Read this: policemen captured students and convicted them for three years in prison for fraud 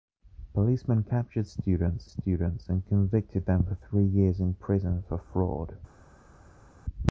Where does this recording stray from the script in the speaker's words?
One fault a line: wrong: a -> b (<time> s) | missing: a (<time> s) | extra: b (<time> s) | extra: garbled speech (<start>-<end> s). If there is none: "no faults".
extra: students (2.0 s)